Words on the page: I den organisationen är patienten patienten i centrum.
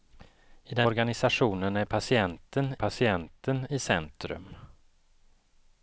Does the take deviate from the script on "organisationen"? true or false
false